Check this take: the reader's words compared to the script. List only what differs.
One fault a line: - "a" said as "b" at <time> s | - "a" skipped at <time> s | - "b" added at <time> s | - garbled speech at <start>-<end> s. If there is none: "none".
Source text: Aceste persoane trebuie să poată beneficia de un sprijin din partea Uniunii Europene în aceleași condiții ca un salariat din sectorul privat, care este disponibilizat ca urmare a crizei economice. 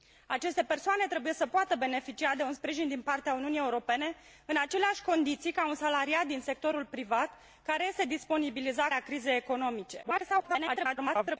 - "ca urmare" skipped at 8.9 s
- garbled speech at 10.0-11.4 s